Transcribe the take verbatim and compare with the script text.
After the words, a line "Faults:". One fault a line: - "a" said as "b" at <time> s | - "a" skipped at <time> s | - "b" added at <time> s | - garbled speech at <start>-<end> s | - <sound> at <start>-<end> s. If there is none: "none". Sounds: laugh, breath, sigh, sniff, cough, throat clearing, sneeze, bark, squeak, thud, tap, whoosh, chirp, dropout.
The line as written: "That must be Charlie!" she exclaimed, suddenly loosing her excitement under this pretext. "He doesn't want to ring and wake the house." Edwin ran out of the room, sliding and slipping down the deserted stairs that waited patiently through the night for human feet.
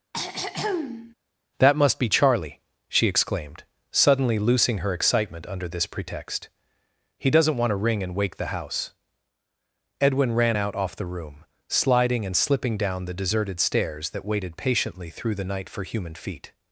"That must be Charlie!" she exclaimed, suddenly loosing her excitement under this pretext. "He doesn't want to ring and wake the house." Edwin ran out off the room, sliding and slipping down the deserted stairs that waited patiently through the night for human feet.
Faults:
- throat clearing at 0.1-1.1 s
- "of" said as "off" at 10.7 s